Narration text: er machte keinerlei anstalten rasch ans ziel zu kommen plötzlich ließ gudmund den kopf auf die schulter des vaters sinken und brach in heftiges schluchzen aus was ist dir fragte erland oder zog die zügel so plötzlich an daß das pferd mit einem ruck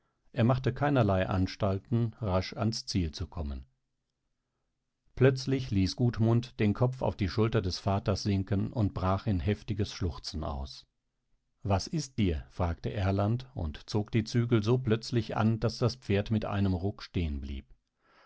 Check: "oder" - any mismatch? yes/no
yes